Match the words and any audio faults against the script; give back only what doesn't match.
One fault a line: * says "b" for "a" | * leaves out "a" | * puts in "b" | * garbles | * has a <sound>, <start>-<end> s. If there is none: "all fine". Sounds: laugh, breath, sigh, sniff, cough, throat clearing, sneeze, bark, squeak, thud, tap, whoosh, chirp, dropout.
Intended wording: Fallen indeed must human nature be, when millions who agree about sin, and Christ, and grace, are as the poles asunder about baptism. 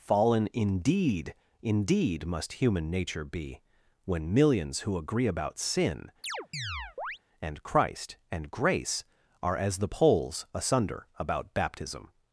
* puts in "indeed"
* has a chirp, 6.2-7.2 s